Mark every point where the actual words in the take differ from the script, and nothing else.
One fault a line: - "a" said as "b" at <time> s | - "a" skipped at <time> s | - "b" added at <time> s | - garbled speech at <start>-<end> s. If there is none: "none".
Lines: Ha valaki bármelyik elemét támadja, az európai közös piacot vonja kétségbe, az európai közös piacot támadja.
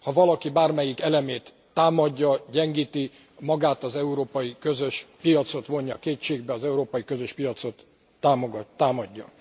- "gyengíti magát" added at 2.5 s